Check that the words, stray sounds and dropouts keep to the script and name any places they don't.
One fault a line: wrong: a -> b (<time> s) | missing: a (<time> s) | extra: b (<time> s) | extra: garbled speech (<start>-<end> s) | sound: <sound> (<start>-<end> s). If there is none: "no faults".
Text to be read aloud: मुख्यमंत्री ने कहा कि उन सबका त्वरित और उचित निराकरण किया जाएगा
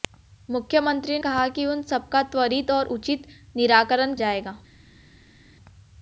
missing: ने (1.2 s)
missing: किया (4.2 s)